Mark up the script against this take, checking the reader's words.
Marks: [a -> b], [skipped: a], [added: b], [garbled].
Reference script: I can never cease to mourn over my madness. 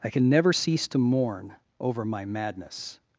I can never cease to mourn over my madness.